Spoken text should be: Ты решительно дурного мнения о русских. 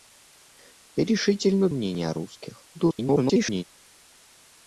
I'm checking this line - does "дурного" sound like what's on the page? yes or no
no